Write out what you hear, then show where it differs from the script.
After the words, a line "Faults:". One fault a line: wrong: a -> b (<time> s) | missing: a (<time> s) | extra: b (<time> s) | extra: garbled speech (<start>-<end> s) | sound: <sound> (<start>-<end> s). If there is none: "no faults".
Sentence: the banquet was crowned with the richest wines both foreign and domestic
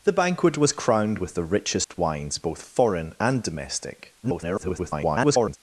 the banquet was crowned with the richest wines both foreign and domestic [garbled]
Faults:
sound: dropout (1.8-1.9 s)
extra: garbled speech (4.2-5.6 s)